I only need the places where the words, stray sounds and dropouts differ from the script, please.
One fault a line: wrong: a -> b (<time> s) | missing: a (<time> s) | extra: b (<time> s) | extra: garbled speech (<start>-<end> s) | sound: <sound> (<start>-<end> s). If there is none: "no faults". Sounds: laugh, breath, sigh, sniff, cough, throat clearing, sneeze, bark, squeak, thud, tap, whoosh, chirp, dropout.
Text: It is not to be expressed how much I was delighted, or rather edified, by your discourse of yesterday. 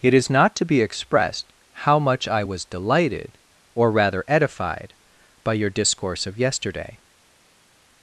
no faults